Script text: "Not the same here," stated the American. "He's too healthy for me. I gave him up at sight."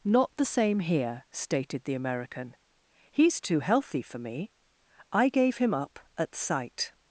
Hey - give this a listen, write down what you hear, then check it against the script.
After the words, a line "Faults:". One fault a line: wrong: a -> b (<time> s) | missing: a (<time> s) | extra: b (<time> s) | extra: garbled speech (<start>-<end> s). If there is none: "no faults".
"Not the same here," stated the American. "He's too healthy for me. I gave him up at sight."
Faults:
no faults